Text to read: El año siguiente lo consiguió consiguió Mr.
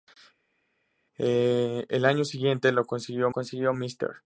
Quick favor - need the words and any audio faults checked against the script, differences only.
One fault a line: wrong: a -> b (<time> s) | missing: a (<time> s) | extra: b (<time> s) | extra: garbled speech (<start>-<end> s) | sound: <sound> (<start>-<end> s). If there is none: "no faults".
no faults